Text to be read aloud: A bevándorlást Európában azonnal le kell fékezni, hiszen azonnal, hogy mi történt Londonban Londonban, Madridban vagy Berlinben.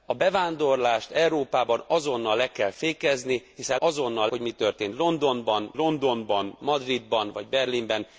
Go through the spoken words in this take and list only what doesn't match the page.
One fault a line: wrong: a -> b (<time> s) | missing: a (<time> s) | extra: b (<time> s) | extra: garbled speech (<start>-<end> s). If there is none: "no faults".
no faults